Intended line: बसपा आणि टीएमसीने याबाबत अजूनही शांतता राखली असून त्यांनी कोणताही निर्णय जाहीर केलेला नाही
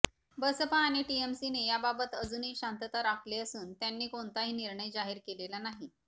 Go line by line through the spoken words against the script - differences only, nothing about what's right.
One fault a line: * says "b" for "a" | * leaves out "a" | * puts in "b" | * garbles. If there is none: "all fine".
all fine